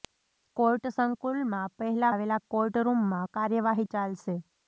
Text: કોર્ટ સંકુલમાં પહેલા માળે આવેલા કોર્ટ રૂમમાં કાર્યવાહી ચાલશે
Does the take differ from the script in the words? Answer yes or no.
yes